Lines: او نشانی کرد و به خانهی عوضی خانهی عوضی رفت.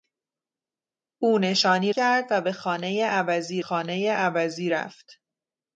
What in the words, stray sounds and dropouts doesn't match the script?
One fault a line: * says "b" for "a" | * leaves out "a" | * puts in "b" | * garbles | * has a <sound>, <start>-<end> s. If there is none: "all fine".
all fine